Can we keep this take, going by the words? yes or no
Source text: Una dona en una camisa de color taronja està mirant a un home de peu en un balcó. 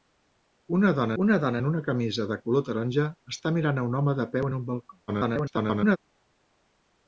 no